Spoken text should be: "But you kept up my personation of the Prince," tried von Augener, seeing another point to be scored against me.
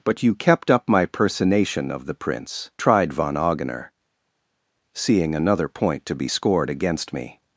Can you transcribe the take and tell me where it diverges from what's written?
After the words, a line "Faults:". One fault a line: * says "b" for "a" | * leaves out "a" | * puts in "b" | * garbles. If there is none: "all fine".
"But you kept up my personation of the Prince," tried von Augener, seeing another point to be scored against me.
Faults:
all fine